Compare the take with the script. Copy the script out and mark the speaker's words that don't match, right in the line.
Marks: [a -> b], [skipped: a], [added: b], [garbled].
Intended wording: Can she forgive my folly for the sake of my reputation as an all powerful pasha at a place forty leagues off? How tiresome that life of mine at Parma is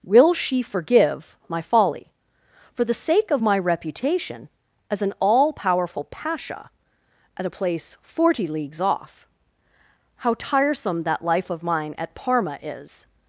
[Can -> Will] she forgive my folly for the sake of my reputation as an all powerful pasha at a place forty leagues off? How tiresome that life of mine at Parma is